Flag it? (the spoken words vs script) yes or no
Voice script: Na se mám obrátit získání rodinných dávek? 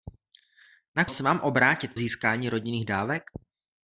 no